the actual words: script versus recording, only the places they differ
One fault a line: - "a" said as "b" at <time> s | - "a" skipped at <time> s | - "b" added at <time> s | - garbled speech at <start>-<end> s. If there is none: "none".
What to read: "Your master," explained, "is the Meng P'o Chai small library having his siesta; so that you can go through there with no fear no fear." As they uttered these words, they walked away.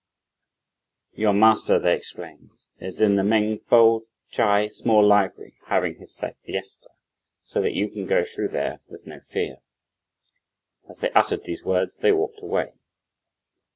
- "they" added at 1.8 s
- "in" added at 3.0 s
- "no fear" skipped at 9.6 s